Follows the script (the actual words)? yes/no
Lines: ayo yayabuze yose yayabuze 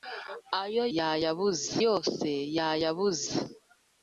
yes